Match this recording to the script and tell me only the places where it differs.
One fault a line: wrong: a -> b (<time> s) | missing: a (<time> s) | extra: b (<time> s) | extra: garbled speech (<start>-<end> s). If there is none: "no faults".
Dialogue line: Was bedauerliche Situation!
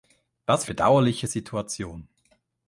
no faults